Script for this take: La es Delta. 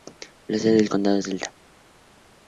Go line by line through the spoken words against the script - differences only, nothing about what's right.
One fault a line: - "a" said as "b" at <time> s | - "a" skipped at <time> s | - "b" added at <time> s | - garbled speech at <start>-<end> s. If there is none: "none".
- "sede del condado" added at 0.6 s